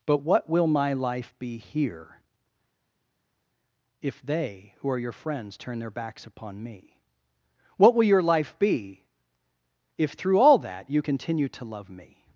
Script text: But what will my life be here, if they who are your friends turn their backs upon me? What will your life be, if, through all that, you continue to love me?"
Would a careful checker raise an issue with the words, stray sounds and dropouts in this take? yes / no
no